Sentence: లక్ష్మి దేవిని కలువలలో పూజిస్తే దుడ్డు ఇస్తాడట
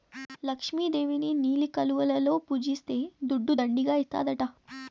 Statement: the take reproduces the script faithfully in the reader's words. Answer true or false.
false